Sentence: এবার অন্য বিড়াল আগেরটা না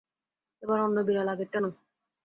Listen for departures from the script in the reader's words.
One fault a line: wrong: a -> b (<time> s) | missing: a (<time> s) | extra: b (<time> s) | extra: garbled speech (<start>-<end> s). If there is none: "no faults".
no faults